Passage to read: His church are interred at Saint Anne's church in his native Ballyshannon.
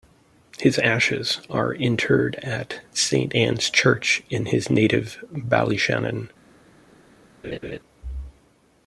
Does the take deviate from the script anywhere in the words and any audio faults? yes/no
yes